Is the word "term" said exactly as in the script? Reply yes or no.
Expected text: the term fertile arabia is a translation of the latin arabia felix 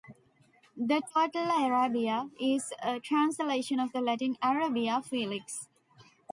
no